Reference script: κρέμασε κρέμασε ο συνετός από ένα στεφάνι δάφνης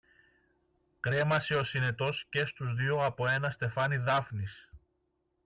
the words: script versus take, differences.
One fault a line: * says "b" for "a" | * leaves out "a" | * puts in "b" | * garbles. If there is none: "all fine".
* leaves out "κρέμασε"
* puts in "και στους δυο"